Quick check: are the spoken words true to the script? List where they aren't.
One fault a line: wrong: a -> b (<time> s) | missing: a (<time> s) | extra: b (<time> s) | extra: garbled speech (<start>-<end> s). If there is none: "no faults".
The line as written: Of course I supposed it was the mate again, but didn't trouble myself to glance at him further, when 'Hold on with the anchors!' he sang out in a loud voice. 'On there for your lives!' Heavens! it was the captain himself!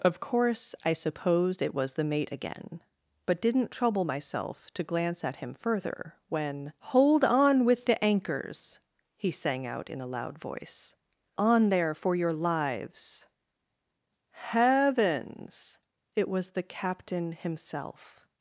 no faults